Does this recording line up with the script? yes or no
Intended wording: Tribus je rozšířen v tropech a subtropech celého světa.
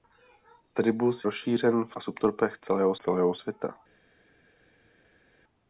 no